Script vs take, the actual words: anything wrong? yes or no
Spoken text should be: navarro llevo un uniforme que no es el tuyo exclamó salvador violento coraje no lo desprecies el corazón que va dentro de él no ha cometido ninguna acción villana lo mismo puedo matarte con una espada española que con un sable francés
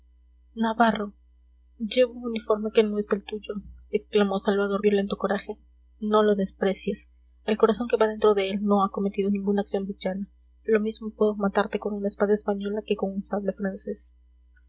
no